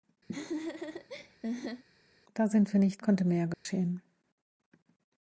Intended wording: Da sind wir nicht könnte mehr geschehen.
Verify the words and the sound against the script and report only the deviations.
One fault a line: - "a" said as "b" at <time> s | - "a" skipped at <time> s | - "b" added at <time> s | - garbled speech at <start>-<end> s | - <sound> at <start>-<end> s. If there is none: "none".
- laugh at 0.3-1.8 s
- dropout at 3.5-3.7 s